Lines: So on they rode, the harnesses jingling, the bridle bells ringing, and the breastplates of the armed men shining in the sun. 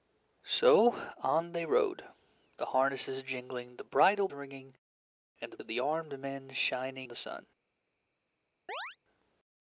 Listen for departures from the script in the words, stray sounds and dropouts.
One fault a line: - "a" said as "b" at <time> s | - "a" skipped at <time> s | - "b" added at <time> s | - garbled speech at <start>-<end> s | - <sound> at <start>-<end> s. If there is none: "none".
- "bells" skipped at 4.3 s
- "breastplates" skipped at 5.6 s
- "in" skipped at 7.1 s
- chirp at 8.7-9.0 s